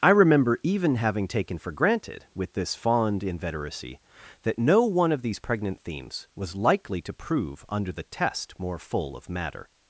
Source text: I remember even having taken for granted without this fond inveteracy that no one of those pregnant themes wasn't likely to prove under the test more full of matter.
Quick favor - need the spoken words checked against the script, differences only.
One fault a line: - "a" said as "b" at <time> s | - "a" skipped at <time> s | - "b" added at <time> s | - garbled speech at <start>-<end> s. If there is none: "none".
- "without" said as "with" at 2.3 s
- "those" said as "these" at 5.2 s
- "wasn't" said as "was" at 6.4 s